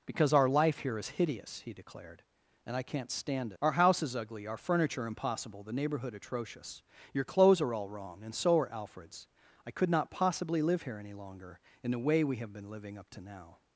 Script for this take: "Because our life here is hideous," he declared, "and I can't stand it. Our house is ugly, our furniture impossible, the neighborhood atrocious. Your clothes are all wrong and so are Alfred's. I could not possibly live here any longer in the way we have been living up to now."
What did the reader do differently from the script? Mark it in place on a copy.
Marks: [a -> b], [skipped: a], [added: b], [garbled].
"Because our life here is hideous," he declared, "and I can't stand [skipped: it.] Our house is ugly, our furniture impossible, the neighborhood atrocious. Your clothes are all wrong and so are Alfred's. I could not possibly live here any longer in the way we have been living up to now."